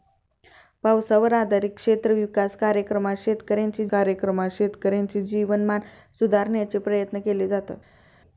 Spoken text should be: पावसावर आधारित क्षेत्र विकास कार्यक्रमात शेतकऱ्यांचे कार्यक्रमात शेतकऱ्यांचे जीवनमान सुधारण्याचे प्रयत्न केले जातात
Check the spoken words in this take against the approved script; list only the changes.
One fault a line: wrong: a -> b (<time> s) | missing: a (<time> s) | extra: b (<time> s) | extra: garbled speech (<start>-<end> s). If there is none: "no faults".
no faults